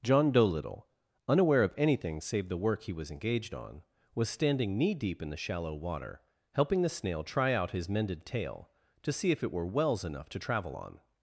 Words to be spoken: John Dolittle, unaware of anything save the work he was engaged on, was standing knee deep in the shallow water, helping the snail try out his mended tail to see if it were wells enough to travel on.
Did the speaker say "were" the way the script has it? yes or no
yes